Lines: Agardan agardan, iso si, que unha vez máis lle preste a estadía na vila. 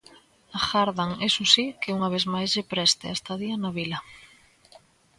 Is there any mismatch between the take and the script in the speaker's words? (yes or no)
yes